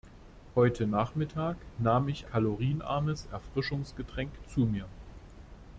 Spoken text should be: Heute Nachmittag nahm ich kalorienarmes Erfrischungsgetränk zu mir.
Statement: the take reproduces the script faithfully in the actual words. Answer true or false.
true